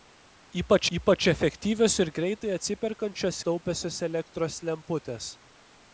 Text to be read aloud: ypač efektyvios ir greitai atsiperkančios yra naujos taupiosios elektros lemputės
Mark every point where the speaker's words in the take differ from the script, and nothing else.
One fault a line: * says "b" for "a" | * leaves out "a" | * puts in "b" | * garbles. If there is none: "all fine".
* puts in "ypač"
* leaves out "yra naujos"